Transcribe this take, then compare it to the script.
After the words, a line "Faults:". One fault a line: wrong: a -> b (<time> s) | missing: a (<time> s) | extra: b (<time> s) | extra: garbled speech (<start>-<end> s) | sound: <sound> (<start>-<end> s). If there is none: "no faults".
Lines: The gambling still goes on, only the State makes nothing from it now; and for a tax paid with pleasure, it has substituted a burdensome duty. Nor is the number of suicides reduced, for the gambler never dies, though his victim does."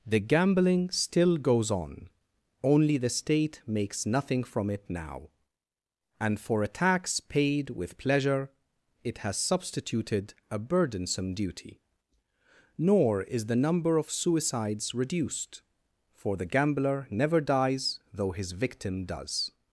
The gambling still goes on, only the State makes nothing from it now; and for a tax paid with pleasure, it has substituted a burdensome duty. Nor is the number of suicides reduced, for the gambler never dies, though his victim does."
Faults:
no faults